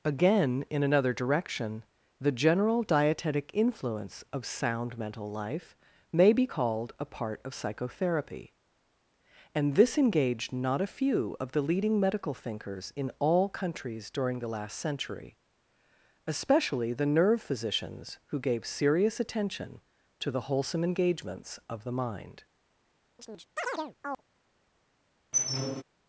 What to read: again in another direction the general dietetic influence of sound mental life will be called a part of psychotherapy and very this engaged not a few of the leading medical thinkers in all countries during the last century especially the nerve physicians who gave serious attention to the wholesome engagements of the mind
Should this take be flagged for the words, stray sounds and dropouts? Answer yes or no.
yes